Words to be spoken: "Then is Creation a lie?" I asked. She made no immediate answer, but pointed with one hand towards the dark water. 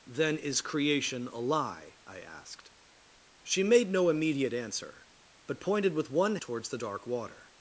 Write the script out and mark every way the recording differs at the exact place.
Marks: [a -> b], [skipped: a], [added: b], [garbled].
"Then is Creation a lie?" I asked. She made no immediate answer, but pointed with one [skipped: hand] towards the dark water.